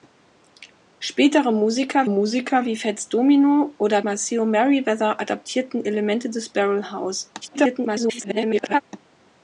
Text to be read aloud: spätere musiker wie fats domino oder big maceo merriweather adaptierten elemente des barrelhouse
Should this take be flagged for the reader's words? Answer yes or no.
yes